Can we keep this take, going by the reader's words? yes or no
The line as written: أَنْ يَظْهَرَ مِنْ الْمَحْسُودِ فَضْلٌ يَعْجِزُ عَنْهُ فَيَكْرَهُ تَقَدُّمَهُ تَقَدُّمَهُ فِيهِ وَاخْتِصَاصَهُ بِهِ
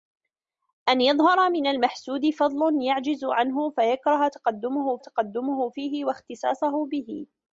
yes